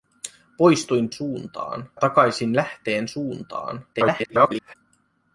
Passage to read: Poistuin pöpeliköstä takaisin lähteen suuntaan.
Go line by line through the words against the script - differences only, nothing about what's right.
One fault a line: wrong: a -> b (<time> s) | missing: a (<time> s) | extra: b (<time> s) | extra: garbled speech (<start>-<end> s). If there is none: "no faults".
wrong: pöpeliköstä -> suuntaan (1.1 s)
extra: garbled speech (3.9-4.7 s)